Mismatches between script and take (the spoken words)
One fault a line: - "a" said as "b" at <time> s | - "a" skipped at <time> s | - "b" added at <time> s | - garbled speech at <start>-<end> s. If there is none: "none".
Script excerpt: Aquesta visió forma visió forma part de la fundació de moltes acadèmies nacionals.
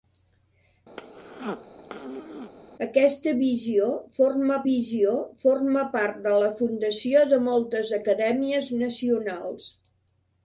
none